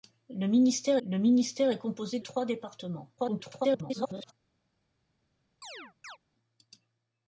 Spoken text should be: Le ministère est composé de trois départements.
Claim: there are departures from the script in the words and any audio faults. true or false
true